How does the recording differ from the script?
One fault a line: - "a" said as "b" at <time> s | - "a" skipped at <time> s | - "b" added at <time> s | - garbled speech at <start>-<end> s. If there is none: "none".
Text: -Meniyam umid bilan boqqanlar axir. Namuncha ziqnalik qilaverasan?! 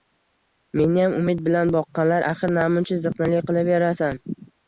none